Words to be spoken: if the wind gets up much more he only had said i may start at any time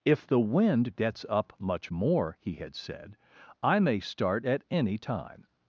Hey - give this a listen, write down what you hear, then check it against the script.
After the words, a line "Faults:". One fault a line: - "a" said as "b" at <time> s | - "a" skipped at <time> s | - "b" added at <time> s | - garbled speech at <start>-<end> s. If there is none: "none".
if the wind gets up much more he had said i may start at any time
Faults:
- "only" skipped at 2.5 s